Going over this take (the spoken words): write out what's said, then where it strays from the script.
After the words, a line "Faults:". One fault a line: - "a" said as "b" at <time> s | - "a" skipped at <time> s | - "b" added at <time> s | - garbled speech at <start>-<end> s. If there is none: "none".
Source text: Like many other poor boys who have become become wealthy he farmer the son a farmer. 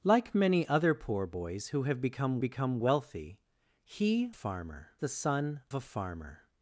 Like many other poor boys who have become become wealthy he farmer the son a farmer.
Faults:
none